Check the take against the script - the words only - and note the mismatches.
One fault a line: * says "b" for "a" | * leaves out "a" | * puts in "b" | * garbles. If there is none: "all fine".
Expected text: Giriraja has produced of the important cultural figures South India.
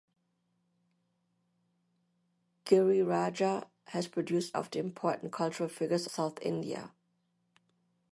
all fine